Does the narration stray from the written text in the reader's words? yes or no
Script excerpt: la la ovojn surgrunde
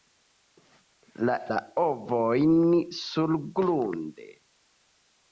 no